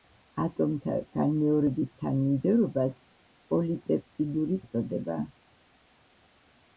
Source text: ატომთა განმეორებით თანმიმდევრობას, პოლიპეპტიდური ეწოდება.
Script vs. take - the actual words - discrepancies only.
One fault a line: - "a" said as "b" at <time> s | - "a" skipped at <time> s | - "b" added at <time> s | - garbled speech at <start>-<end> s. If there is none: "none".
none